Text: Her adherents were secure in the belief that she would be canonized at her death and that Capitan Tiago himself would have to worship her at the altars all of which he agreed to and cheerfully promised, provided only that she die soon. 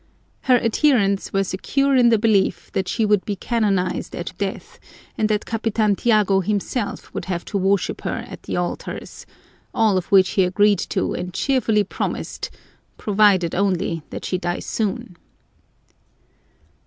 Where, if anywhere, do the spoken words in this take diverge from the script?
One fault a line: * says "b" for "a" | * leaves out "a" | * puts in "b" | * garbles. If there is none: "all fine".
* leaves out "her"